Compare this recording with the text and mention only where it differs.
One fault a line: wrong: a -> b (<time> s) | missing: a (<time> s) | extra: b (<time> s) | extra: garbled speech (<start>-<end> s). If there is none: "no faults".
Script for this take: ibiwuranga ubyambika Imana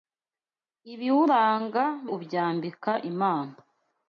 no faults